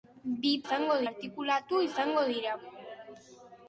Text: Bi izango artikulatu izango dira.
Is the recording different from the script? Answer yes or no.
no